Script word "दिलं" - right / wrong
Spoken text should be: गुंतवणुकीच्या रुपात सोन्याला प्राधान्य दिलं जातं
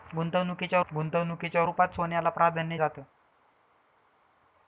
wrong